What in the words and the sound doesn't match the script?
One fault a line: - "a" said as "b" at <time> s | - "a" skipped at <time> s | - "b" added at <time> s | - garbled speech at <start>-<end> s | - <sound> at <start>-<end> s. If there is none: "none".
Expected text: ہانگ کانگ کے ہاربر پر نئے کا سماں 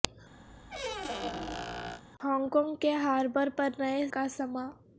- squeak at 0.5-2.0 s